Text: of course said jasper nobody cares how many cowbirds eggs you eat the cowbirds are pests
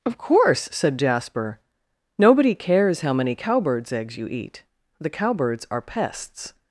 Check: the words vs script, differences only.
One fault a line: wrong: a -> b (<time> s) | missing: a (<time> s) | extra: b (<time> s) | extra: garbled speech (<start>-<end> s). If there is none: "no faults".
no faults